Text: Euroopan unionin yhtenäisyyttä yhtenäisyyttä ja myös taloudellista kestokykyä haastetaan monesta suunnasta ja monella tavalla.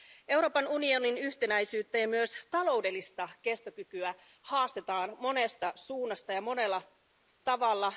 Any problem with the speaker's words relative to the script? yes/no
yes